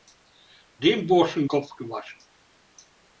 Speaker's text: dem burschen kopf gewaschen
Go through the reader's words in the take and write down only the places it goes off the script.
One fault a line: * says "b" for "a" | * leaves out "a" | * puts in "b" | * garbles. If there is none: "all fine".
all fine